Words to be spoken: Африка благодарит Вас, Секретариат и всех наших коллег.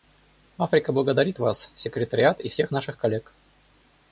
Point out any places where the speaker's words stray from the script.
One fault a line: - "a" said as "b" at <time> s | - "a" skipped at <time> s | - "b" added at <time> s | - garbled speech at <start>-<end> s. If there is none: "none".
none